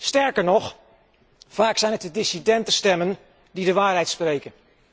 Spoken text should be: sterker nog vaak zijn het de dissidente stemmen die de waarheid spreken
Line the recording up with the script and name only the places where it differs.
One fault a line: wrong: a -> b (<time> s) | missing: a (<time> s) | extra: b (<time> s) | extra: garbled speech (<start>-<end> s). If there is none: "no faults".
no faults